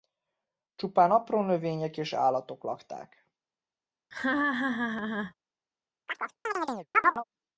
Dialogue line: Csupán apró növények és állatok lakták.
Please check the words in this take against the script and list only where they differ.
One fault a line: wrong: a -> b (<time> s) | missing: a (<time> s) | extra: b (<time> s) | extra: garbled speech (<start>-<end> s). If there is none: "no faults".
no faults